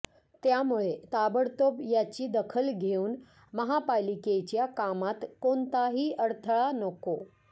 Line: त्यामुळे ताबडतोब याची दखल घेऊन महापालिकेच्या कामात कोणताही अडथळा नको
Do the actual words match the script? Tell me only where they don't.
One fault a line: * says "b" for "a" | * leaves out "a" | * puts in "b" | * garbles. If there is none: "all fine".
all fine